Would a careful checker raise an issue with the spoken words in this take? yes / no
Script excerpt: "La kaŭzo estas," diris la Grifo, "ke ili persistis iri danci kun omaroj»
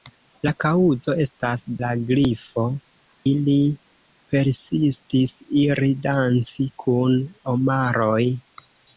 yes